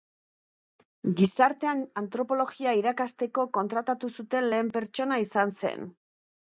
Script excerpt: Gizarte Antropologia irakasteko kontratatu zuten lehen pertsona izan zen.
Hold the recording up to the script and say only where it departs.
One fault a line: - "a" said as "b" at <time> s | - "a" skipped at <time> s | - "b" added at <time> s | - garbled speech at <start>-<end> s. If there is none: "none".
none